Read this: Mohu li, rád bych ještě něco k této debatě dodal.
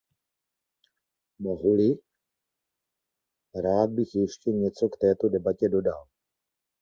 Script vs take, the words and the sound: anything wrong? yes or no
no